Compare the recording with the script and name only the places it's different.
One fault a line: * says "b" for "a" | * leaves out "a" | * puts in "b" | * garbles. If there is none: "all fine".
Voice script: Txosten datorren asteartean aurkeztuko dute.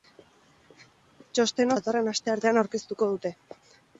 all fine